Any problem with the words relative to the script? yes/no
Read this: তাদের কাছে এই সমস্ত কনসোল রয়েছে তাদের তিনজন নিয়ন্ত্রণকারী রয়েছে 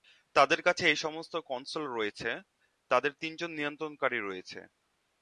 no